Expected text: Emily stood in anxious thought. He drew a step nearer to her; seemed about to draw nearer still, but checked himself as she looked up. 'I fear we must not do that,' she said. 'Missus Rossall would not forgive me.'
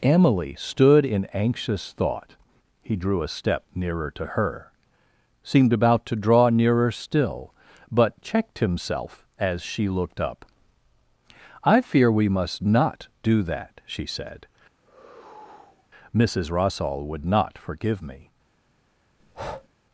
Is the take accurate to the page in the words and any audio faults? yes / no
no